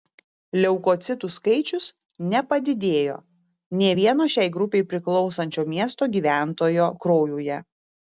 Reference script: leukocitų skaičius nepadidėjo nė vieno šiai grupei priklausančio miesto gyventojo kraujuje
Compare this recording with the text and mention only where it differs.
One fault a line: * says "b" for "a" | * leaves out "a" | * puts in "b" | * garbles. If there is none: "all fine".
all fine